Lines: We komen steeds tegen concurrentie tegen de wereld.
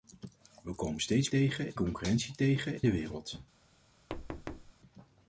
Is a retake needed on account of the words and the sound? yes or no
yes